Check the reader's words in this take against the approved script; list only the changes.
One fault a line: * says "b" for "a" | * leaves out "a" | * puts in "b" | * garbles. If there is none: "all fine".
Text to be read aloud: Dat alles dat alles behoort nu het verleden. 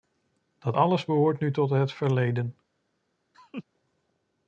* leaves out "dat alles"
* puts in "tot"